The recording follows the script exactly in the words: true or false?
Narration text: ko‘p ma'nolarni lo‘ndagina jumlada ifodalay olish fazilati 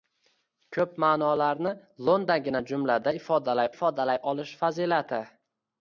false